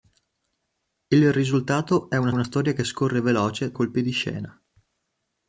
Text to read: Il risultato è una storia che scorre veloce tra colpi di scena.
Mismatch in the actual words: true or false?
true